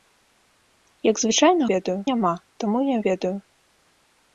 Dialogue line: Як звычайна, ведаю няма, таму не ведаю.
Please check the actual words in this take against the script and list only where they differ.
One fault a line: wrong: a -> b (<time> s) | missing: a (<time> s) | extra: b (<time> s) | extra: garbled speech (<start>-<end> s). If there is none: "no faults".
no faults